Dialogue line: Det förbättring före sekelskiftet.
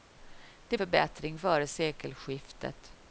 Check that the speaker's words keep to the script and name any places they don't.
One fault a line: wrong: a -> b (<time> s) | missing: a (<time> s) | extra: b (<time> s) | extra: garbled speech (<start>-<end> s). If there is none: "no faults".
no faults